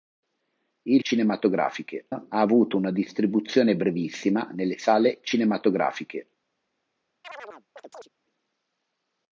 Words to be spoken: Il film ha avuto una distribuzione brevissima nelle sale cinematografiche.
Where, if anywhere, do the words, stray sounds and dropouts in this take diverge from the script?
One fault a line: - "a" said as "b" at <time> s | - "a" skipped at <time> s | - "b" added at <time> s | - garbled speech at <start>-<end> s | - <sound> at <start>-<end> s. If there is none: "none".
- "film" said as "cinematografiche" at 1.0 s
- chirp at 7.2-8.1 s